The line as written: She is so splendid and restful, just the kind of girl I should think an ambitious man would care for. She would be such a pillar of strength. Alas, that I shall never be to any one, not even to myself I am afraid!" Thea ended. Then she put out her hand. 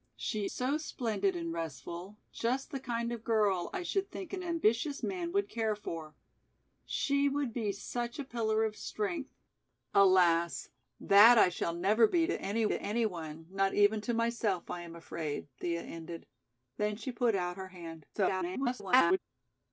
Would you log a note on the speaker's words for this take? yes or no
yes